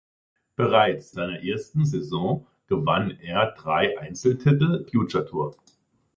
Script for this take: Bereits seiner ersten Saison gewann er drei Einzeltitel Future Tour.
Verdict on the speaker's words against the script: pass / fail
pass